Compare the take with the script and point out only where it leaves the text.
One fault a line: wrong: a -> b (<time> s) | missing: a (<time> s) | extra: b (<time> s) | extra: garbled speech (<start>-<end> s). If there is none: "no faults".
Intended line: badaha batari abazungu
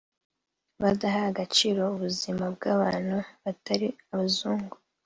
extra: agaciro ubuzima bw'abantu (1.3 s)